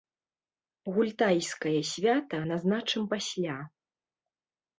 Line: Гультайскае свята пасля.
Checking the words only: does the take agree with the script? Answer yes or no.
no